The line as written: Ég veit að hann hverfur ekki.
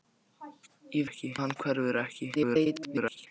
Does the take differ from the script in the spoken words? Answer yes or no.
yes